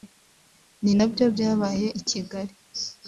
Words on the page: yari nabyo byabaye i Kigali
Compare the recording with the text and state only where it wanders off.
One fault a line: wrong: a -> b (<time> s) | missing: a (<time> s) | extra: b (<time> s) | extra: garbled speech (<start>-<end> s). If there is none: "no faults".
wrong: yari -> ni (0.8 s)